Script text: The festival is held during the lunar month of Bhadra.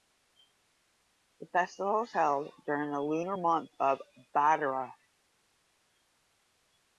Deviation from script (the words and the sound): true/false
false